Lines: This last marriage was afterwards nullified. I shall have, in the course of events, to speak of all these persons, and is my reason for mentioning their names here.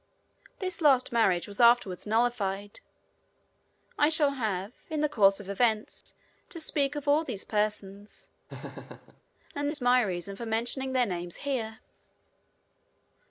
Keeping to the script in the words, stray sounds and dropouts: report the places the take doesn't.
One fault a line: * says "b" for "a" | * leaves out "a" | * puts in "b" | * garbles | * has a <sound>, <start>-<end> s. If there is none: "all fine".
* has a dropout, 6.0-6.1 s
* has a laugh, 8.5-9.2 s